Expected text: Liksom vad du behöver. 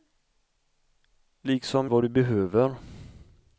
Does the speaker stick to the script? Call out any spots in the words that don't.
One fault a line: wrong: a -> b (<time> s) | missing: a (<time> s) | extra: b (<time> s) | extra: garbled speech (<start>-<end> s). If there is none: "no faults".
no faults